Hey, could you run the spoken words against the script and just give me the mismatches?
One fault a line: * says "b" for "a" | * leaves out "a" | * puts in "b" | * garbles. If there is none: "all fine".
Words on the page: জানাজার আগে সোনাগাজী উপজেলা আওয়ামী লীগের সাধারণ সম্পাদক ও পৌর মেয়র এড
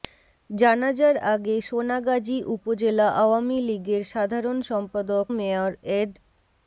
* leaves out "ও পৌর"